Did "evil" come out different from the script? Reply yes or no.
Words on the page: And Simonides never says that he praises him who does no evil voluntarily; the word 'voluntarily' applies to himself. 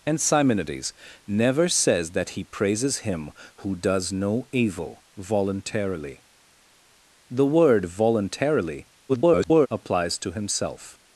no